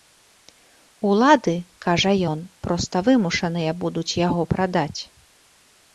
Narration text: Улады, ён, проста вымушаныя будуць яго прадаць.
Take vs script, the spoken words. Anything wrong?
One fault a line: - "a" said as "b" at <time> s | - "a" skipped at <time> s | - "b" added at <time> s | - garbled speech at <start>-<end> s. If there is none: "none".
- "кажа" added at 1.9 s